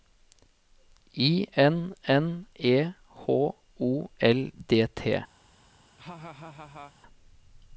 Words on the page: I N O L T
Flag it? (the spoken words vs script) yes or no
yes